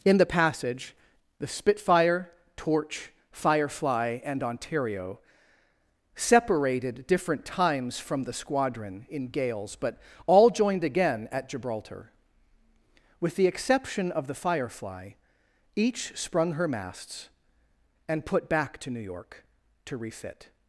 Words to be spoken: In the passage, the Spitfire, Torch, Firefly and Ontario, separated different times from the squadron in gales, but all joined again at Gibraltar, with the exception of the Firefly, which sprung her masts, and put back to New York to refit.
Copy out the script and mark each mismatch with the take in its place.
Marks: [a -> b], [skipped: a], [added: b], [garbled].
In the passage, the Spitfire, Torch, Firefly and Ontario, separated different times from the squadron in gales, but all joined again at Gibraltar, with the exception of the Firefly, [which -> each] sprung her masts, and put back to New York to refit.